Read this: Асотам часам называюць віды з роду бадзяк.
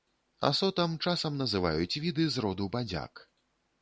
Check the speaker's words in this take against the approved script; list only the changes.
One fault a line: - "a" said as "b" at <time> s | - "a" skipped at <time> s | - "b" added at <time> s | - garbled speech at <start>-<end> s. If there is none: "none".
none